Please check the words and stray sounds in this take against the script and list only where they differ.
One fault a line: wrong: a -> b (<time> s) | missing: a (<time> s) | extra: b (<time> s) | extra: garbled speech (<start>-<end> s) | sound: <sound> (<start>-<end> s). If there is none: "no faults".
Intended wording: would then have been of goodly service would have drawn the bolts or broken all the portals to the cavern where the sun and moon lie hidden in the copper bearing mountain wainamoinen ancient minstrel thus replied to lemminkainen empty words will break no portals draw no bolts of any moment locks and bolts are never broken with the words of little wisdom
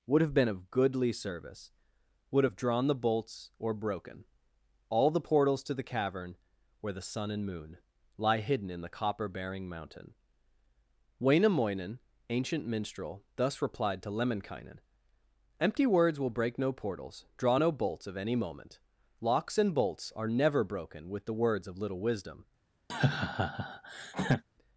missing: then (0.2 s)
sound: laugh (22.9-24.4 s)